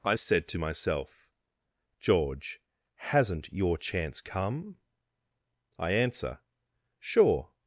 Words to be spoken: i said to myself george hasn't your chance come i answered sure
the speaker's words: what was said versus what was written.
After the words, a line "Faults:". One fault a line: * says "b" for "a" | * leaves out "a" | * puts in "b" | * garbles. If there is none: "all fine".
i said to myself george hasn't your chance come i answer sure
Faults:
* says "answer" for "answered"